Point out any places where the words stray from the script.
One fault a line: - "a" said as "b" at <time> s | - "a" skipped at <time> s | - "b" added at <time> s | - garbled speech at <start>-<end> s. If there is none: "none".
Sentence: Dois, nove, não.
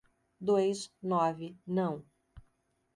none